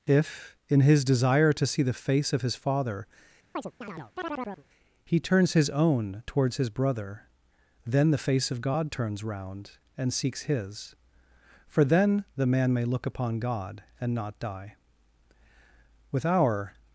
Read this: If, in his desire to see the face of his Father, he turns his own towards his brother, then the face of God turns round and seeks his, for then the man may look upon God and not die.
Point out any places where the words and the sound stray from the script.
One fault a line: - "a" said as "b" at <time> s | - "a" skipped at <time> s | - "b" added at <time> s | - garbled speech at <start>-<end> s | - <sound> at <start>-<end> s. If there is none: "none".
- chirp at 3.5-4.7 s
- "With our" added at 16.1 s